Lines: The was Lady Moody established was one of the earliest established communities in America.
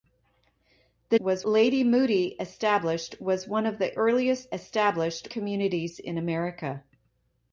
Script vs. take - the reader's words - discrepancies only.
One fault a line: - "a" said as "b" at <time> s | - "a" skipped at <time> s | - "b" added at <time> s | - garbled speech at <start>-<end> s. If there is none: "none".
none